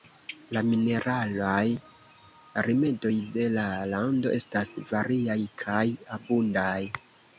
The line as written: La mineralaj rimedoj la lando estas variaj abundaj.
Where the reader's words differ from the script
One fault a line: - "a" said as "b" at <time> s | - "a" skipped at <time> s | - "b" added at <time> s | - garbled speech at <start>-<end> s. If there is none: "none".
- "de" added at 3.4 s
- "kaj" added at 5.6 s